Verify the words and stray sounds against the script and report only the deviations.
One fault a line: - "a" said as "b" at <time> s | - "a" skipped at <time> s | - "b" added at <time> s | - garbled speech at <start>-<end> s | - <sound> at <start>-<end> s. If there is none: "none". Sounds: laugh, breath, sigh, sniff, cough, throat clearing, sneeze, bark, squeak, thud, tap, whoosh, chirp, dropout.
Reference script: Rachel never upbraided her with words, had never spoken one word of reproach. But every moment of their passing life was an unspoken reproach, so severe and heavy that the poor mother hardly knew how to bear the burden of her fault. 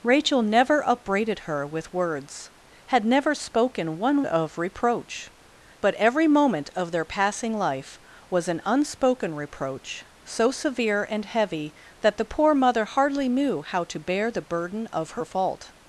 - "word" skipped at 4.2 s